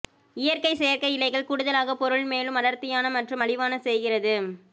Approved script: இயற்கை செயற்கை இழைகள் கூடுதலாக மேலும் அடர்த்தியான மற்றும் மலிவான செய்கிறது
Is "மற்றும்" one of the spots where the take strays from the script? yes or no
no